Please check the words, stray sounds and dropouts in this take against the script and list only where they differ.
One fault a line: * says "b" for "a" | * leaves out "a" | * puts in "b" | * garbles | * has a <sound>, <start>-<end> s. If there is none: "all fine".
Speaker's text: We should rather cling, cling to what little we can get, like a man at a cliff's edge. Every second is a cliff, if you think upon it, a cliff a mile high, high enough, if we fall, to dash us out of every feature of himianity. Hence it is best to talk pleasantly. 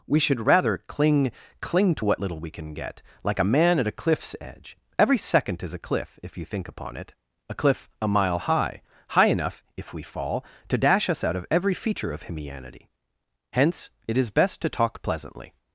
all fine